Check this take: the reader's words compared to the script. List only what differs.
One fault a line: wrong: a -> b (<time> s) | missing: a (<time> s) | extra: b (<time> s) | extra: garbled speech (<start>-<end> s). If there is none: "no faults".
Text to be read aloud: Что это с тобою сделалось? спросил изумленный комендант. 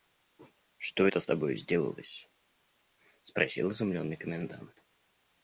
no faults